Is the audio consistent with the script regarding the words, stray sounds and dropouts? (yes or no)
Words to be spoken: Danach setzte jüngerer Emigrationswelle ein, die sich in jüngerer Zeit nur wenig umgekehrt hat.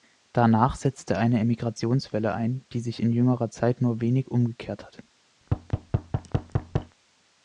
no